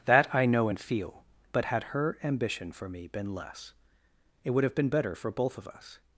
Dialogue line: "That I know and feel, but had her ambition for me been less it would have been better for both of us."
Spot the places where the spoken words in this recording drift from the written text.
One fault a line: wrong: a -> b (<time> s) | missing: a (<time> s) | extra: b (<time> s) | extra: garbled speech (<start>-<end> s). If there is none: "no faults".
no faults